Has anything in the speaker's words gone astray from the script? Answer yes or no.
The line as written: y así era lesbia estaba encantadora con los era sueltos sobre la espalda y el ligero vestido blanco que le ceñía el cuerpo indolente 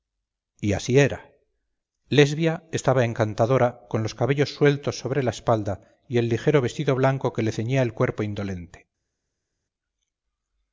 yes